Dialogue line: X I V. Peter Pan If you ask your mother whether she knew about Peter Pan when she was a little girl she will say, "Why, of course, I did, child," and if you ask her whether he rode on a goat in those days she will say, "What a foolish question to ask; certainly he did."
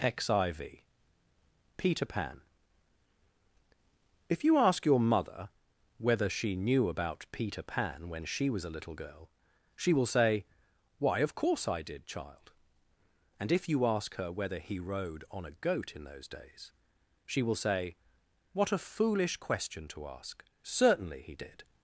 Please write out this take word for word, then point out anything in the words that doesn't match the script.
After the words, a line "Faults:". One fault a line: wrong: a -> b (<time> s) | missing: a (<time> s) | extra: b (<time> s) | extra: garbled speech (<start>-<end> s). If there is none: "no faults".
X I V. Peter Pan If you ask your mother whether she knew about Peter Pan when she was a little girl she will say, "Why, of course, I did, child," and if you ask her whether he rode on a goat in those days she will say, "What a foolish question to ask; certainly he did."
Faults:
no faults